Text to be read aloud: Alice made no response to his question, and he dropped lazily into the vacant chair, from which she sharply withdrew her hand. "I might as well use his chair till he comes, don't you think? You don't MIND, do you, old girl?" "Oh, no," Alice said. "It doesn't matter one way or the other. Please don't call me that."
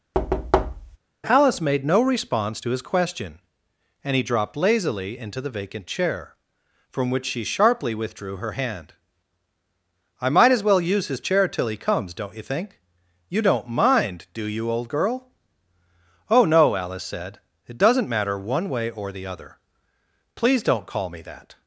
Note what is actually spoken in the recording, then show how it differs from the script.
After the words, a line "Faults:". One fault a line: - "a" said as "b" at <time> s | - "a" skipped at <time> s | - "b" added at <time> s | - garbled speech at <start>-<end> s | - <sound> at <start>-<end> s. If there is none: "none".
Alice made no response to his question, and he dropped lazily into the vacant chair, from which she sharply withdrew her hand. "I might as well use his chair till he comes, don't you think? You don't MIND, do you, old girl?" "Oh, no," Alice said. "It doesn't matter one way or the other. Please don't call me that."
Faults:
- thud at 0.1-1.0 s